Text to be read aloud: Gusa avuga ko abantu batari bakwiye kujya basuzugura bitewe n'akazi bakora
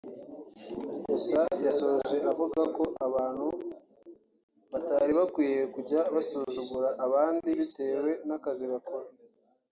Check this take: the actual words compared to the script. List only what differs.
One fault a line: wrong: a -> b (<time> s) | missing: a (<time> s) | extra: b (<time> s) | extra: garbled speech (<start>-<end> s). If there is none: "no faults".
extra: yasoje (1.6 s)
extra: abandi (7.0 s)